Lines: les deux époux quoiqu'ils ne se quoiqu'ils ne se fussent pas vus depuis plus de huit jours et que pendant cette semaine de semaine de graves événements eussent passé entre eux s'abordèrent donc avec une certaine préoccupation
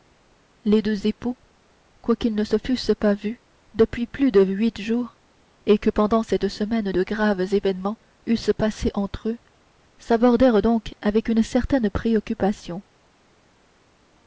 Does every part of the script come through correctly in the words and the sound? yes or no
no